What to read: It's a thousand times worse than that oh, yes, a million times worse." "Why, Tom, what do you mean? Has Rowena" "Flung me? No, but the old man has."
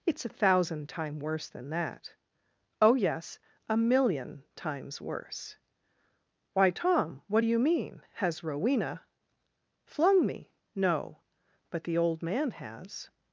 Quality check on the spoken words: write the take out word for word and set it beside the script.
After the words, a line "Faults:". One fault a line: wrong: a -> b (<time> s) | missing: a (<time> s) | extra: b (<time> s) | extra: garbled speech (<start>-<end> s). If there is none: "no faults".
It's a thousand time worse than that oh, yes, a million times worse." "Why, Tom, what do you mean? Has Rowena" "Flung me? No, but the old man has."
Faults:
wrong: times -> time (0.9 s)